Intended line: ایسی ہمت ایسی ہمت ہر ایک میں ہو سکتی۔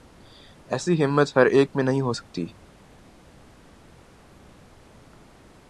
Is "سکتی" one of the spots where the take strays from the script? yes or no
no